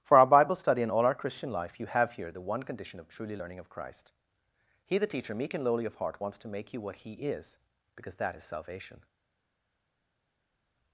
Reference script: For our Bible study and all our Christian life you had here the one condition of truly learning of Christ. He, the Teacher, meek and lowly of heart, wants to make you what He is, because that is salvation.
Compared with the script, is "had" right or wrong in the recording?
wrong